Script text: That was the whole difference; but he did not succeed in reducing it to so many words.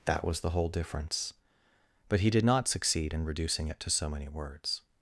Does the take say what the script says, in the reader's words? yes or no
yes